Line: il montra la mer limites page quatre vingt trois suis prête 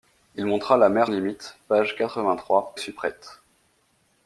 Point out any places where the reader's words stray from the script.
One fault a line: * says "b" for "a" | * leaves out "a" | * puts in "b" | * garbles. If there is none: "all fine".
all fine